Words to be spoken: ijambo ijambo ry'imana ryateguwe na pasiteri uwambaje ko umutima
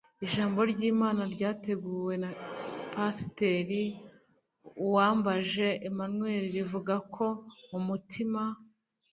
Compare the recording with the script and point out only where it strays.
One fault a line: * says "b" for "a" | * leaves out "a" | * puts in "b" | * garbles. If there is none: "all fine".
* leaves out "ijambo"
* puts in "emmanuel rivuga"